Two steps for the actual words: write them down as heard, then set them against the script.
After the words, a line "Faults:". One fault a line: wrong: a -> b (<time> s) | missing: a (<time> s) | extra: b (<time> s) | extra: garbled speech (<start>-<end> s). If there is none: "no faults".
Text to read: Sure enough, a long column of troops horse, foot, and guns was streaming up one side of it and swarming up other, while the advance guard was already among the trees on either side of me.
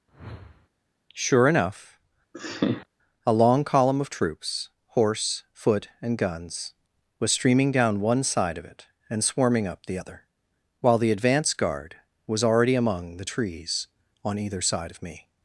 Sure enough, a long column of troops horse, foot, and guns was streaming down one side of it and swarming up the other, while the advance guard was already among the trees on either side of me.
Faults:
wrong: up -> down (7.7 s)
extra: the (9.8 s)